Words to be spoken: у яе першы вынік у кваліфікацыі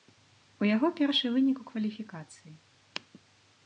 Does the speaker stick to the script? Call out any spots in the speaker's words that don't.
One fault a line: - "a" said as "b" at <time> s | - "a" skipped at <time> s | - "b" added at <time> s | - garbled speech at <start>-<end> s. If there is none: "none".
- "яе" said as "яго" at 0.8 s